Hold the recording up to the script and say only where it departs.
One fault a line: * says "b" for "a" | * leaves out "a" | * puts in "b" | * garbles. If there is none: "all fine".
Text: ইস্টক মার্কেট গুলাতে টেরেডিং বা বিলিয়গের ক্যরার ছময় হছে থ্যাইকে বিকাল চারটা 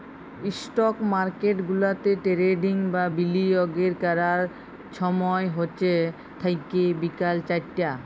all fine